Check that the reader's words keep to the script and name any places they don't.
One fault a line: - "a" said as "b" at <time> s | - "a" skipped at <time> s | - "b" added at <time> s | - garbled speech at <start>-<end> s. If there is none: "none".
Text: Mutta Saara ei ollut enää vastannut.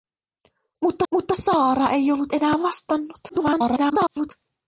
- "mutta" added at 1.1 s
- garbled speech at 3.3-4.3 s